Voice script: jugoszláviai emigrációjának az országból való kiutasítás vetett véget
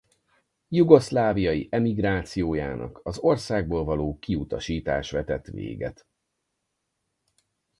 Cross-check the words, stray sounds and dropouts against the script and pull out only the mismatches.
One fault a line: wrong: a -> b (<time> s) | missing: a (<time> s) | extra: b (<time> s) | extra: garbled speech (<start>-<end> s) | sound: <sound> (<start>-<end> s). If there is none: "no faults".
no faults